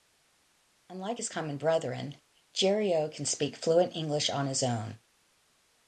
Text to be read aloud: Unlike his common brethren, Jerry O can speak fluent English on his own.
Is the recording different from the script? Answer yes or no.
no